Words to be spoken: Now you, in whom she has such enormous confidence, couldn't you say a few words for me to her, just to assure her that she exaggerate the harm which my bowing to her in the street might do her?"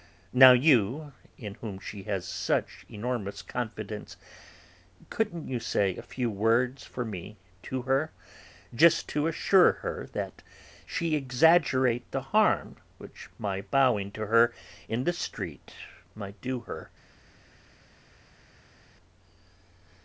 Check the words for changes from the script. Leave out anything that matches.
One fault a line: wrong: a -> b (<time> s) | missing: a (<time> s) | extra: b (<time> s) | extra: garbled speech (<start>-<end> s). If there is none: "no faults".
no faults